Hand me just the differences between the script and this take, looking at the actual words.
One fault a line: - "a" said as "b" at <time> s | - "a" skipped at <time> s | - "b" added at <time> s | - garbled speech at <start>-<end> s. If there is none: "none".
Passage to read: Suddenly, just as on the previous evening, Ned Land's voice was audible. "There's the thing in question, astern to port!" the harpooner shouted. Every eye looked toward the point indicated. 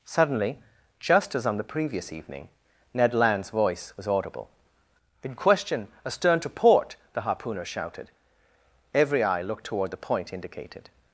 - "There's the thing" skipped at 4.5 s